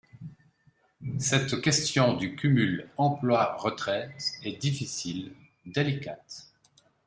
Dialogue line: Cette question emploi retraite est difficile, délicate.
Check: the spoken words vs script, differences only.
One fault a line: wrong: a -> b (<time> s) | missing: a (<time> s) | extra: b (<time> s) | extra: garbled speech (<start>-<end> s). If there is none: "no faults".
extra: du cumul (2.1 s)